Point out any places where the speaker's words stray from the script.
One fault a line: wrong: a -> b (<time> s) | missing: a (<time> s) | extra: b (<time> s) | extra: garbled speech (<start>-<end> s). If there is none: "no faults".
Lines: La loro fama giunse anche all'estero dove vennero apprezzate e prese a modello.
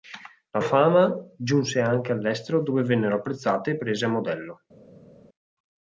missing: loro (0.6 s)